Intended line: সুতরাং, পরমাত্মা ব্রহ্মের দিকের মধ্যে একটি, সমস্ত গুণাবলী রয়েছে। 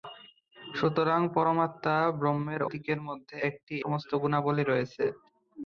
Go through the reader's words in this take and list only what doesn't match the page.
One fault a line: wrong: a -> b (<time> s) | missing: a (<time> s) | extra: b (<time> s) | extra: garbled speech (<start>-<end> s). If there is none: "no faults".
no faults